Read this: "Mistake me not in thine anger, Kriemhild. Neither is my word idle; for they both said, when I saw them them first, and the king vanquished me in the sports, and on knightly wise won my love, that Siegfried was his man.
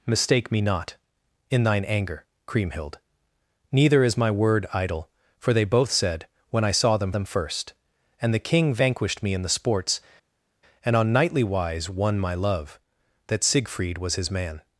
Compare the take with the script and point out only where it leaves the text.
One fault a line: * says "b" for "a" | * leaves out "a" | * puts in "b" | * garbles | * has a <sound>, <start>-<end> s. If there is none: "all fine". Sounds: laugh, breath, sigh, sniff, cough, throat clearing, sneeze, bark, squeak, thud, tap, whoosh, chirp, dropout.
all fine